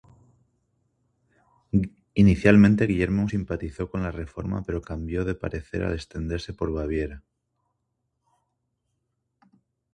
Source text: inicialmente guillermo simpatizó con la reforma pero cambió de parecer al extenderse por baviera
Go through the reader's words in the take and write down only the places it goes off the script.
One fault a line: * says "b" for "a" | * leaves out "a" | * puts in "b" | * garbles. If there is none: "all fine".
all fine